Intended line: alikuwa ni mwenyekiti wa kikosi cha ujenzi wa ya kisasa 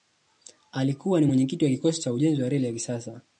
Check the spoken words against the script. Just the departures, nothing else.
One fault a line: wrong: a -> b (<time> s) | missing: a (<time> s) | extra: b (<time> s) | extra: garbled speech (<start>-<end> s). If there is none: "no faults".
extra: reli (2.5 s)